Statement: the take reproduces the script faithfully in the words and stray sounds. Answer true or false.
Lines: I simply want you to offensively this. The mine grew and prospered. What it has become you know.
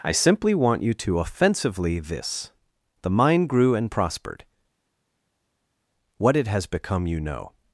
true